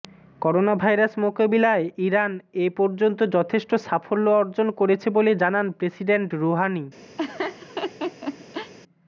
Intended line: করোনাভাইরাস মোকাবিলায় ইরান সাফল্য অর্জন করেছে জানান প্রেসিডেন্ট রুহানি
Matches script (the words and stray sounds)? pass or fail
fail